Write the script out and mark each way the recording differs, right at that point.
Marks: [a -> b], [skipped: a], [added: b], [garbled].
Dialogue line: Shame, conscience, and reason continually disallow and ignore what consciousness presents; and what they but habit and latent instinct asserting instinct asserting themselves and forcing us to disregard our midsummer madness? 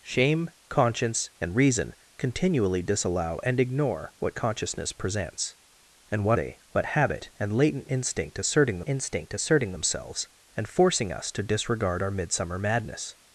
Shame, conscience, and reason continually disallow and ignore what consciousness presents; and what they but habit and latent instinct asserting instinct asserting themselves and forcing us to disregard our midsummer madness?